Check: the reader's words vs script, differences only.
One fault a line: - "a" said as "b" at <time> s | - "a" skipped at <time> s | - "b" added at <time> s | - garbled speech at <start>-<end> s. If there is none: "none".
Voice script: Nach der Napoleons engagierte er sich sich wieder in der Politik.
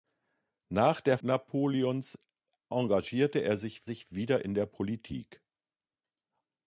none